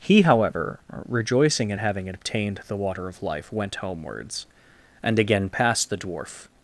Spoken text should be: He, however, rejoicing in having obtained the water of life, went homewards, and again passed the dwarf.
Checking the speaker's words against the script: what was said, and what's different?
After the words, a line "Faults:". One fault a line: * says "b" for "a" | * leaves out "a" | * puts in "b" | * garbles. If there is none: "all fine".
He, however, rejoicing in having obtained the water of life, went homewards, and again passed the dwarf.
Faults:
all fine